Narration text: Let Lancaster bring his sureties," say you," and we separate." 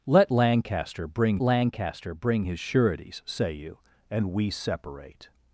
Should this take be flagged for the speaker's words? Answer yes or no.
yes